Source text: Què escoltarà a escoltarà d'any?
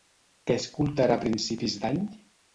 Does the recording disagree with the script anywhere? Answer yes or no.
yes